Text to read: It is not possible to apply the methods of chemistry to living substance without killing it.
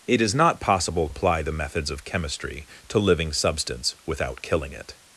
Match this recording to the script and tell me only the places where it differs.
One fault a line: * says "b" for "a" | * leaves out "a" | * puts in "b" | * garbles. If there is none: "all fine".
* leaves out "to"